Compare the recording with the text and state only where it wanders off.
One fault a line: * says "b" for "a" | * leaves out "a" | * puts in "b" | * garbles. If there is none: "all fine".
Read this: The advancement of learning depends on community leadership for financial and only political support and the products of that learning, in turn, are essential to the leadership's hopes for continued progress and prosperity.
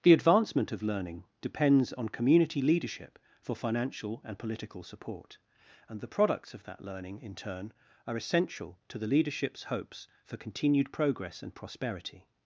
* leaves out "only"